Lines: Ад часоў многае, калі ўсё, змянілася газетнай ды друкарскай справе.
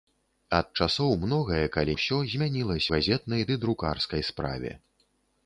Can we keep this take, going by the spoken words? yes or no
yes